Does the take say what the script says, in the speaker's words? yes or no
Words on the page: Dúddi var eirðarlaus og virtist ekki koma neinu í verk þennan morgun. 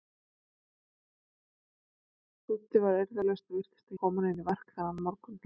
no